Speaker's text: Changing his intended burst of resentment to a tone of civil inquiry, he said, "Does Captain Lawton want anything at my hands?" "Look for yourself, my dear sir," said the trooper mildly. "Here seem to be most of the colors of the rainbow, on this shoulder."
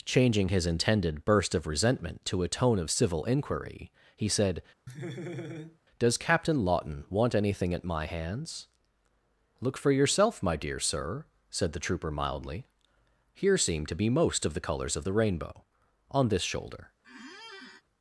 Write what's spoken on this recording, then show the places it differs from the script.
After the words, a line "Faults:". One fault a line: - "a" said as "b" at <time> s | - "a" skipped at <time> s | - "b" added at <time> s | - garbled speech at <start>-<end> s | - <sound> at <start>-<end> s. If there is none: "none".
Changing his intended burst of resentment to a tone of civil inquiry, he said, "Does Captain Lawton want anything at my hands?" "Look for yourself, my dear sir," said the trooper mildly. "Here seem to be most of the colors of the rainbow, on this shoulder."
Faults:
- laugh at 4.9-5.8 s
- squeak at 17.0-17.8 s